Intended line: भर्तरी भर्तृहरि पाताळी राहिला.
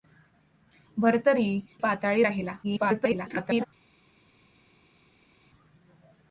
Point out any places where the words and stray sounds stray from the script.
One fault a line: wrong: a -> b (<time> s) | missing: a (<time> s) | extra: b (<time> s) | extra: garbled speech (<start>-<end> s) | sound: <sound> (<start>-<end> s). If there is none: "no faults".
missing: भर्तृहरि (1.6 s)
extra: garbled speech (2.6-3.7 s)